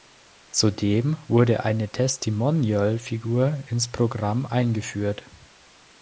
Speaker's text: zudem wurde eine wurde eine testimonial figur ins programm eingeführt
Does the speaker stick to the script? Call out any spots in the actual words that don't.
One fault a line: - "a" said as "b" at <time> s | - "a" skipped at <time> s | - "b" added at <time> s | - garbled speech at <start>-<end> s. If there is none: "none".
- "wurde eine" skipped at 1.9 s